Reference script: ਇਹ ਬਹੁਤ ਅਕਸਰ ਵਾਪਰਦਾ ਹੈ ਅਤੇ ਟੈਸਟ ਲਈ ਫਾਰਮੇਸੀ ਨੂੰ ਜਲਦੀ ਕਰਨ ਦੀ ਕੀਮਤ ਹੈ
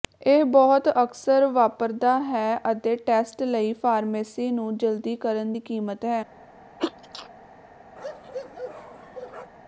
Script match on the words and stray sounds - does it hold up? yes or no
no